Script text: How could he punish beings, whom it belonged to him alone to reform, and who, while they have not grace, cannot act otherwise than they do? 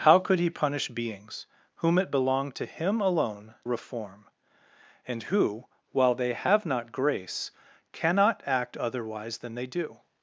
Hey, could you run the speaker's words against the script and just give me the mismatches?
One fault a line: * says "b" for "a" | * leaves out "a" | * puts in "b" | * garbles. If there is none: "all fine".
* leaves out "to"